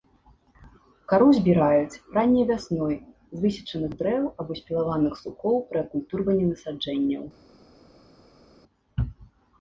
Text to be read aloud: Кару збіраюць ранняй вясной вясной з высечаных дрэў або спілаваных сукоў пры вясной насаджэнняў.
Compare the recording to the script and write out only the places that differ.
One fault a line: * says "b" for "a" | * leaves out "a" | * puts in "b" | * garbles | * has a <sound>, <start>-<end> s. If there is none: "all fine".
* leaves out "вясной"
* says "акультурванні" for "вясной"